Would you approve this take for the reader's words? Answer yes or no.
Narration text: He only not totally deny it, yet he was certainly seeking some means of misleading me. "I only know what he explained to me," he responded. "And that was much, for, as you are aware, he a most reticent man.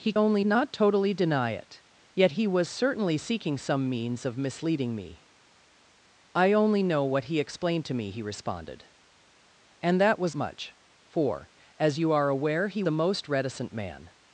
yes